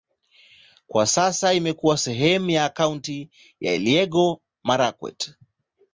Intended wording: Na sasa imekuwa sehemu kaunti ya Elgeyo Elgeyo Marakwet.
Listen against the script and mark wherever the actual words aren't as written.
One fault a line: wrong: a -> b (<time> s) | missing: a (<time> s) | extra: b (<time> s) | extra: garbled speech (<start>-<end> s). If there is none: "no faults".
wrong: Na -> Kwa (0.9 s)
extra: ya (2.5 s)
missing: Elgeyo (4.4 s)